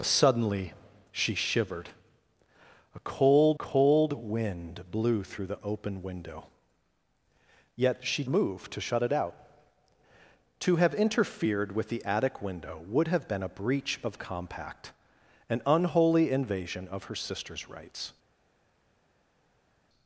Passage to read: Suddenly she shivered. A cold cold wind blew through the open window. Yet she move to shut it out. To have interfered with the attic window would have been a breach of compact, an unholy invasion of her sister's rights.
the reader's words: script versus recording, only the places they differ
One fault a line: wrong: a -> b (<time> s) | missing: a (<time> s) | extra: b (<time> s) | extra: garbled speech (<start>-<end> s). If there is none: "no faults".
no faults